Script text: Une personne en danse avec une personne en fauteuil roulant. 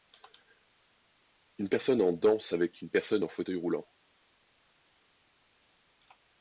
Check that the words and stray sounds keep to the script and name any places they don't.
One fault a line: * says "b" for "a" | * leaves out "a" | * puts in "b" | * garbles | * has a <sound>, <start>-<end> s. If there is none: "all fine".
all fine